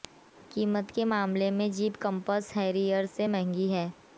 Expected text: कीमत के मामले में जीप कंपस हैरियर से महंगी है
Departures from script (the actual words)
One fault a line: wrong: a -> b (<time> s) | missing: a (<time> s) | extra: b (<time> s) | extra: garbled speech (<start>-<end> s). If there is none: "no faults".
no faults